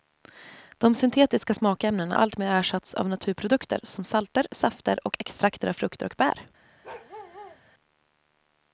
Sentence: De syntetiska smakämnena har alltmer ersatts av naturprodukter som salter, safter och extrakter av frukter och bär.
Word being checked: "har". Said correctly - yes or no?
no